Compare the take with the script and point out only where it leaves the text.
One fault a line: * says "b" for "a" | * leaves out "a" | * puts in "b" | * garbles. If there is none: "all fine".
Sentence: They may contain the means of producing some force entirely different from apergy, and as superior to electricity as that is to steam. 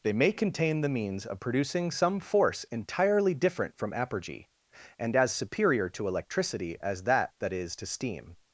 * puts in "that"